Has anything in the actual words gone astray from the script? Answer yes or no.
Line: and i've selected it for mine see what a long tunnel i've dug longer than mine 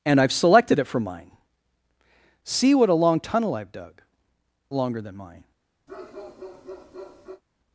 no